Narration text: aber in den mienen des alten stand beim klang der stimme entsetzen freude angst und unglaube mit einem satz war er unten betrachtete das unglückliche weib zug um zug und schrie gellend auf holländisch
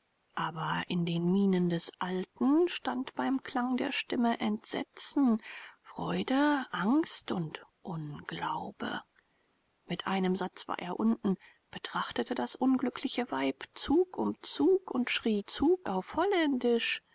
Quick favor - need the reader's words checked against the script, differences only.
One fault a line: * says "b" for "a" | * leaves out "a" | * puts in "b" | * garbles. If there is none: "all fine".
* says "zug" for "gellend"